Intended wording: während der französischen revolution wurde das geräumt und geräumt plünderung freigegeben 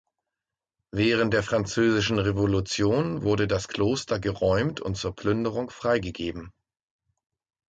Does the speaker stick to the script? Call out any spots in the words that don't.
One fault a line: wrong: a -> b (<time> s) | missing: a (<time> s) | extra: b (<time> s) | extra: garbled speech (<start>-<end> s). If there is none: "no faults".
extra: kloster (3.7 s)
wrong: geräumt -> zur (4.9 s)